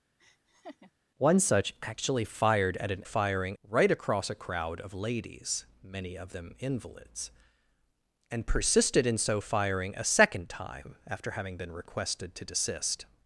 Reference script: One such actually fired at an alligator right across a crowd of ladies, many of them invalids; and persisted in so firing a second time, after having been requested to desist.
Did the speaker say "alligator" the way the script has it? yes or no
no